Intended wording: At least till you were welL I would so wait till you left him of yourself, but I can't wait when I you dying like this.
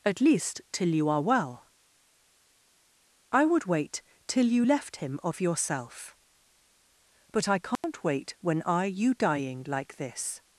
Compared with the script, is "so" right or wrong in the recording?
wrong